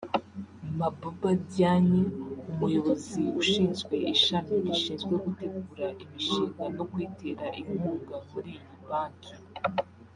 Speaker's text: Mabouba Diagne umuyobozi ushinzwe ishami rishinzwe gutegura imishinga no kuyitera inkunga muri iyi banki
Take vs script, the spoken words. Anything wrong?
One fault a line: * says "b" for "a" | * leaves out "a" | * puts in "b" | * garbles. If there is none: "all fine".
all fine